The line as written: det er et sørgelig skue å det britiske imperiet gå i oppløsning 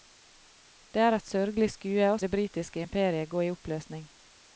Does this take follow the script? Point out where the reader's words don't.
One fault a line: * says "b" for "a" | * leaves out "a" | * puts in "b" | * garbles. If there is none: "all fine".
all fine